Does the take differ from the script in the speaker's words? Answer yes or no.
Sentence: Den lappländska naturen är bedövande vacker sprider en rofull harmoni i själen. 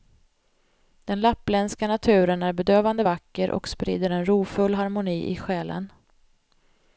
yes